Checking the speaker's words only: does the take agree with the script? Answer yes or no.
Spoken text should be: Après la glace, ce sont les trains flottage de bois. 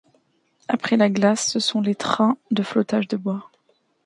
no